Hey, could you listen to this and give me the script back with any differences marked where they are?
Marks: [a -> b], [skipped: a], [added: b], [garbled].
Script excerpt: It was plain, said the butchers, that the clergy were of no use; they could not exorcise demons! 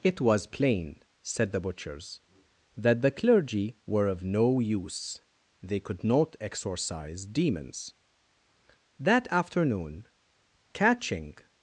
It was plain, said the butchers, that the clergy were of no use; they could not exorcise demons! [added: That afternoon catching]